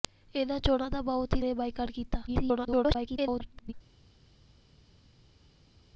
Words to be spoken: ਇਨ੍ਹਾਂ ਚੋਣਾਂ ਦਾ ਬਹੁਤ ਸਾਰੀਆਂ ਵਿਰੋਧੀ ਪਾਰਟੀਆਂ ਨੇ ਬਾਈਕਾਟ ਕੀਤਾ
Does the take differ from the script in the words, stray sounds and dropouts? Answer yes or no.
yes